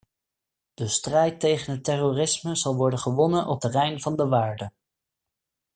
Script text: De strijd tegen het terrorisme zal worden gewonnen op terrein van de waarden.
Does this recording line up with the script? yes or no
yes